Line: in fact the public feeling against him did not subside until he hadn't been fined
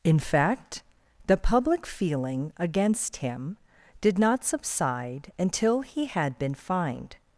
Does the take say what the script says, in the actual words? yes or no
no